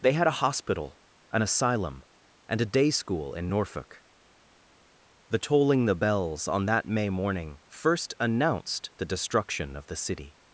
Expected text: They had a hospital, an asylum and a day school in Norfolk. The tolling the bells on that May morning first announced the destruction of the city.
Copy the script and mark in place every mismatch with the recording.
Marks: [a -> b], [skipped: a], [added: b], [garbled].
They had a hospital, an asylum and a day school in Norfolk. The tolling the bells on that May morning first announced the destruction of the city.